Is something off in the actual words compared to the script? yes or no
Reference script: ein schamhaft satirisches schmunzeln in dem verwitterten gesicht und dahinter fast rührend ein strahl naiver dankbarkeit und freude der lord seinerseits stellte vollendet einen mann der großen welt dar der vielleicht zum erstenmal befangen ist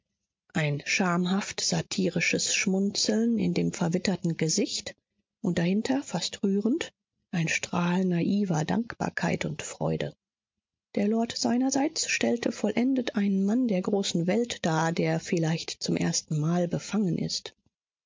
no